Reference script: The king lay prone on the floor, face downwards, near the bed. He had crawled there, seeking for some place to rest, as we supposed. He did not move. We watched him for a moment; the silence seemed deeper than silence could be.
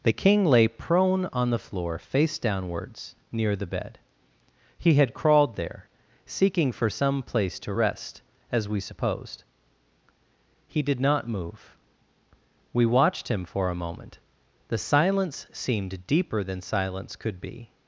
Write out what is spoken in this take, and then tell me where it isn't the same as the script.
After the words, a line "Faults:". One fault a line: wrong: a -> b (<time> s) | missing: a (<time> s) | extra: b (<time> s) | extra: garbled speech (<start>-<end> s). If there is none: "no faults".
The king lay prone on the floor, face downwards, near the bed. He had crawled there, seeking for some place to rest, as we supposed. He did not move. We watched him for a moment; the silence seemed deeper than silence could be.
Faults:
no faults